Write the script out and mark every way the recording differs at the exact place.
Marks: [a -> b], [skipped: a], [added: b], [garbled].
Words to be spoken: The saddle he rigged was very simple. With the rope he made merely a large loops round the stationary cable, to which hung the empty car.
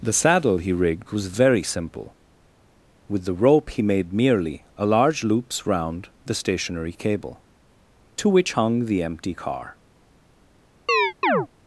The saddle he rigged was very simple. With the rope he made merely a large loops round the stationary cable, to which hung the empty car.